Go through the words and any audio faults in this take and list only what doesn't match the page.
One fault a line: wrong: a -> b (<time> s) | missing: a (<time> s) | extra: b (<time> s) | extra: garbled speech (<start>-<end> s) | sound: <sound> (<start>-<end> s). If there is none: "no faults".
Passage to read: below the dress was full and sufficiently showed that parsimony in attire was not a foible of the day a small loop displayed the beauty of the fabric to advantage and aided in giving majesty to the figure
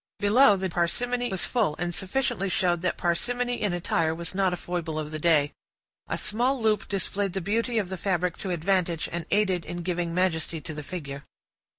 wrong: dress -> parsimony (0.7 s)